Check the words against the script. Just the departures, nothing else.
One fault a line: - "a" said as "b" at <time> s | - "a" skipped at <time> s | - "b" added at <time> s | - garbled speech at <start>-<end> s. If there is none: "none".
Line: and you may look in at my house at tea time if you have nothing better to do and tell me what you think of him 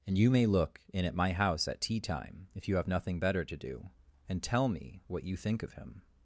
none